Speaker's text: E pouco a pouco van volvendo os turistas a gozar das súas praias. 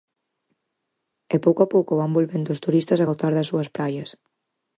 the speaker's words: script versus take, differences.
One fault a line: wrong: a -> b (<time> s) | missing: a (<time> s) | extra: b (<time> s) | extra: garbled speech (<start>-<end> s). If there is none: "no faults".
no faults